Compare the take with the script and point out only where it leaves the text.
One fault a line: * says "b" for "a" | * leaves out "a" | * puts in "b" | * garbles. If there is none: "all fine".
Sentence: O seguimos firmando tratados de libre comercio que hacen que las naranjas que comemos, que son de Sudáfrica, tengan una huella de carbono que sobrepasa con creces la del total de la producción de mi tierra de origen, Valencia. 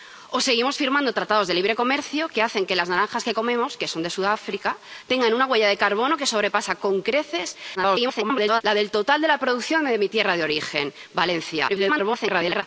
* garbles
* garbles